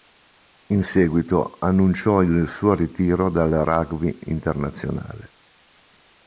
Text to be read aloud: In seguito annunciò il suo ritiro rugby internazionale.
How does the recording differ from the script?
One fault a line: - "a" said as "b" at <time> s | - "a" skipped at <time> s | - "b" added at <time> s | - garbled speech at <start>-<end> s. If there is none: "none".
- "dal" added at 3.3 s